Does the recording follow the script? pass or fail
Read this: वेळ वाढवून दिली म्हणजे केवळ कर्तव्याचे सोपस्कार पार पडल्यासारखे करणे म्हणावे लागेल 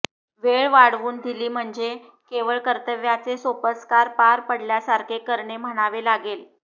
pass